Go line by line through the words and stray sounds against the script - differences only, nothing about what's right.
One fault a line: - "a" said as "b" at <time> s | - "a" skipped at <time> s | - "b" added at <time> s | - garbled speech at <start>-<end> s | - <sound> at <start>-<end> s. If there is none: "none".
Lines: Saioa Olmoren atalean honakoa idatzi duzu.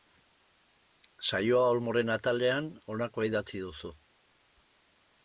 none